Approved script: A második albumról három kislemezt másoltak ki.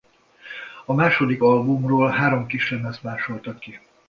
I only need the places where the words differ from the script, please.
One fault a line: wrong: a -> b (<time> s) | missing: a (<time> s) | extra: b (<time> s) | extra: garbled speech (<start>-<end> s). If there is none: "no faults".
no faults